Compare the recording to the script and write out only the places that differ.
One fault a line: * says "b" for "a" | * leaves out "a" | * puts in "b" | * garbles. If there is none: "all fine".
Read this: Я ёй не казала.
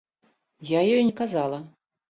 all fine